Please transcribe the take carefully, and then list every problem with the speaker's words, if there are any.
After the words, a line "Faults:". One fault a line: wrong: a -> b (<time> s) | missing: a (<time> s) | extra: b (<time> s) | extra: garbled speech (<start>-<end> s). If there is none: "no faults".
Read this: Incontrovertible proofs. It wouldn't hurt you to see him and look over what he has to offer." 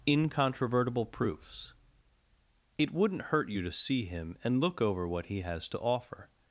Incontrovertible proofs. It wouldn't hurt you to see him and look over what he has to offer."
Faults:
no faults